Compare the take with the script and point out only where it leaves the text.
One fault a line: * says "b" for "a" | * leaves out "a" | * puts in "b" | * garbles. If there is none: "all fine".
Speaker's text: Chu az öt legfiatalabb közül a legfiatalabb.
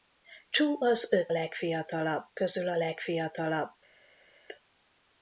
all fine